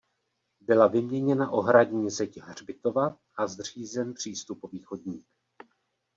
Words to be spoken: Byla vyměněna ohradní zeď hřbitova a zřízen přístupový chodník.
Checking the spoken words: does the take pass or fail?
pass